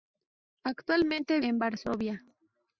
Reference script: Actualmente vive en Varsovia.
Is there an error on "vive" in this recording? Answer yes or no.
yes